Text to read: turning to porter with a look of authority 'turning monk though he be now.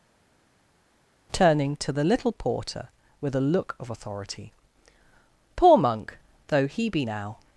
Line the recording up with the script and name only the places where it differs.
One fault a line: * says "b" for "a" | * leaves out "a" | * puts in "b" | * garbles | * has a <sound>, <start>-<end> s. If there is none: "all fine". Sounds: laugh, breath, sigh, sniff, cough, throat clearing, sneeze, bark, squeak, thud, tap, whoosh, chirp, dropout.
* puts in "the little"
* says "poor" for "turning"